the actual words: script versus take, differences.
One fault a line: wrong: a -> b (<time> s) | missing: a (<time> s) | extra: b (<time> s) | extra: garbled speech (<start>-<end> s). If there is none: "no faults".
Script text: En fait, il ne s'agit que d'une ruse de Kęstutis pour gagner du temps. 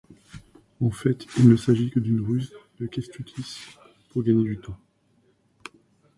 no faults